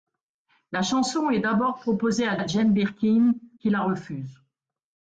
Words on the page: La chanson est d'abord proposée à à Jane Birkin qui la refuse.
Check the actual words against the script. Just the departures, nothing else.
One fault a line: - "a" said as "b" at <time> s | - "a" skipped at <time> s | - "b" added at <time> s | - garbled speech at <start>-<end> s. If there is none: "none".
none